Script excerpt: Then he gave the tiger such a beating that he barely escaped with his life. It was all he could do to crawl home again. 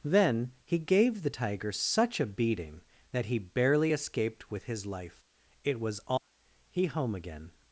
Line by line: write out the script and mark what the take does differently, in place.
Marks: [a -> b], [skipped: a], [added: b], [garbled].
Then he gave the tiger such a beating that he barely escaped with his life. It was all he [skipped: could do to crawl] home again.